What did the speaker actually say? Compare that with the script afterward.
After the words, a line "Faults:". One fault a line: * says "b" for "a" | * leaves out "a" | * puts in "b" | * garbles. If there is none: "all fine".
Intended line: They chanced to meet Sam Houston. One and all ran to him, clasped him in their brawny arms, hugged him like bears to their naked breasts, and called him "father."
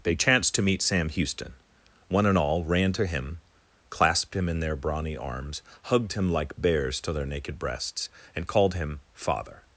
They chanced to meet Sam Houston. One and all ran to him, clasped him in their brawny arms, hugged him like bears to their naked breasts, and called him "father."
Faults:
all fine